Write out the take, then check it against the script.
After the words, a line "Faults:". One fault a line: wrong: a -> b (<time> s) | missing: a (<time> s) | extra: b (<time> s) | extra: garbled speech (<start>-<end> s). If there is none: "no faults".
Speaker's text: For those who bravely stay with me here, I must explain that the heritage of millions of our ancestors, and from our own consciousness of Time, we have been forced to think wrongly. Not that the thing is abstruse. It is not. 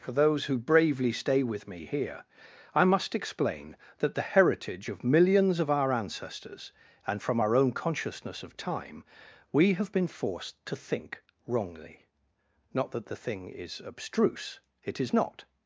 For those who bravely stay with me here, I must explain that the heritage of millions of our ancestors, and from our own consciousness of Time, we have been forced to think wrongly. Not that the thing is abstruse. It is not.
Faults:
no faults